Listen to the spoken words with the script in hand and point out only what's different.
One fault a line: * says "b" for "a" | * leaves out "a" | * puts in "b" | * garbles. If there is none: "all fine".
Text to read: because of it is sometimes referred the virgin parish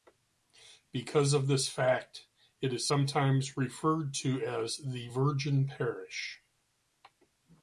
* puts in "this fact"
* puts in "to as"